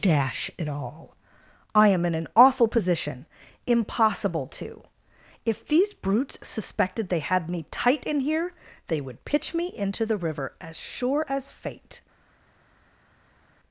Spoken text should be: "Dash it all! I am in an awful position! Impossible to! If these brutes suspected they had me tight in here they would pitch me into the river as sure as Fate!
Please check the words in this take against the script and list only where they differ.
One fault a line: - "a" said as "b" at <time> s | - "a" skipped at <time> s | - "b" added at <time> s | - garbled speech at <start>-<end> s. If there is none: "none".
none